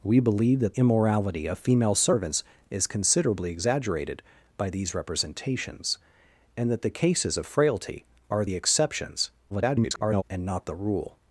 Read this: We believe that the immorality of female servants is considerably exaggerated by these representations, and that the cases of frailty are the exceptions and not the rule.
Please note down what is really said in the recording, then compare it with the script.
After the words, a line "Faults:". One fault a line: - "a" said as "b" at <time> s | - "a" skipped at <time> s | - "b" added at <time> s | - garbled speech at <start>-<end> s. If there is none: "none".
We believe that immorality of female servants is considerably exaggerated by these representations, and that the cases of frailty are the exceptions [garbled] and not the rule.
Faults:
- "the" skipped at 0.7 s
- garbled speech at 9.5-10.2 s